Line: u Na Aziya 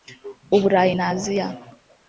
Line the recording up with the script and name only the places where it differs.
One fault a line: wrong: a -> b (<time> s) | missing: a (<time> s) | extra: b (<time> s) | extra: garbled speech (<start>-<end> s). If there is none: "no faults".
extra: Burayi (0.6 s)